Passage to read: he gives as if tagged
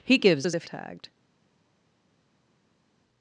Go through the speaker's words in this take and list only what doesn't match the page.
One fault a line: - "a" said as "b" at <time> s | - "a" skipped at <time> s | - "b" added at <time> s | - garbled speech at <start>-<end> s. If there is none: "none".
none